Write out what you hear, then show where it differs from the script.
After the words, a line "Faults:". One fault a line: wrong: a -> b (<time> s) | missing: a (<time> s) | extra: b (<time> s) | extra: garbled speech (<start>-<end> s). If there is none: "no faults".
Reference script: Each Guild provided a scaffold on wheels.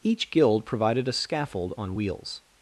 Each Guild provided a scaffold on wheels.
Faults:
no faults